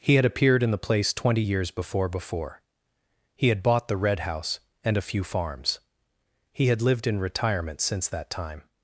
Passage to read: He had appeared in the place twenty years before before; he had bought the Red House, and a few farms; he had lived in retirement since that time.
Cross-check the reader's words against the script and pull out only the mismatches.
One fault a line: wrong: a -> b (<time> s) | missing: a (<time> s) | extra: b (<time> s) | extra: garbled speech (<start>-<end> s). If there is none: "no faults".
no faults